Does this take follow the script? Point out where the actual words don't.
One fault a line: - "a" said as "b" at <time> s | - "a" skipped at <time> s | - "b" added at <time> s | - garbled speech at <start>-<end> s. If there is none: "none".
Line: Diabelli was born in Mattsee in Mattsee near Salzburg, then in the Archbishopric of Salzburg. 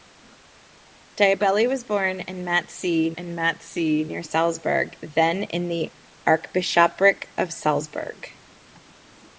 none